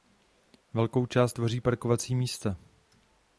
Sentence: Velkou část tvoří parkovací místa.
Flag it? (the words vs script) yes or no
no